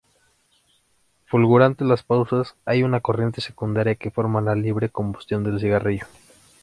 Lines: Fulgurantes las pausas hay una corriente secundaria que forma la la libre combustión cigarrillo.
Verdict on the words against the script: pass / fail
fail